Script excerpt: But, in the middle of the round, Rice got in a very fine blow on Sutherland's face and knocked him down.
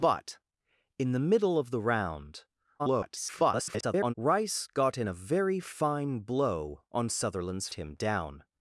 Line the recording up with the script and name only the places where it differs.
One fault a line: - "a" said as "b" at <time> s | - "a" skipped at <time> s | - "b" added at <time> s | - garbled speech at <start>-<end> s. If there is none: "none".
- garbled speech at 2.8-4.1 s
- "face and knocked" skipped at 7.7 s